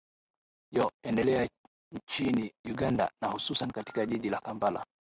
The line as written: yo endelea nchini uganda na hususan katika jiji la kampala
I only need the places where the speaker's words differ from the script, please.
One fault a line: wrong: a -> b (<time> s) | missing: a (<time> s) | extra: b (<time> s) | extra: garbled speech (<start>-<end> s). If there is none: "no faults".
no faults